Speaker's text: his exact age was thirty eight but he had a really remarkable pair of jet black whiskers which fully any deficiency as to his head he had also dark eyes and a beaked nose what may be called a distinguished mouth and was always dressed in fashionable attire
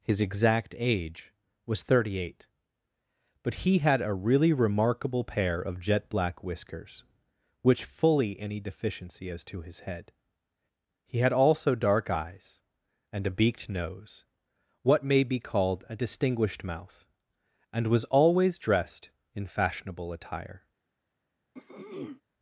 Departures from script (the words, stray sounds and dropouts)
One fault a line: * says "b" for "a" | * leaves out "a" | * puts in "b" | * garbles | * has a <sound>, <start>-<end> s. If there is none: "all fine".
* has a throat clearing, 21.5-22.2 s